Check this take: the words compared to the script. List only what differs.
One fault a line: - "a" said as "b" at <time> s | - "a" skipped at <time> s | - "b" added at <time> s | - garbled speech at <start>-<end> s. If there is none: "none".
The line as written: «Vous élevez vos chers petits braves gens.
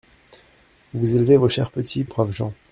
none